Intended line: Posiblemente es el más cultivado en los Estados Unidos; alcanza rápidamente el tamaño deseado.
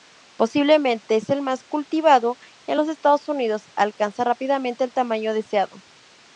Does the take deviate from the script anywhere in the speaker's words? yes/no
no